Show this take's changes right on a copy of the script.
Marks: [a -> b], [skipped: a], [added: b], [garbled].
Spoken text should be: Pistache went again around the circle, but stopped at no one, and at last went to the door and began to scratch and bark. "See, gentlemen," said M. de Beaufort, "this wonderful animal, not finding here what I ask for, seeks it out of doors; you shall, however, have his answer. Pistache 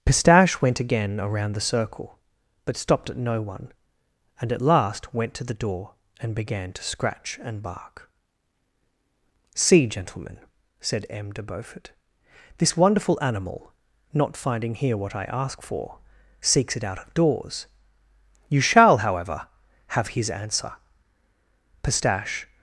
Pistache went again around the circle, but stopped at no one, and at last went to the door and began to scratch and bark. "See, gentlemen," said M. de Beaufort, "this wonderful animal, not finding here what I ask for, seeks it out of doors; you shall, however, have his answer. Pistache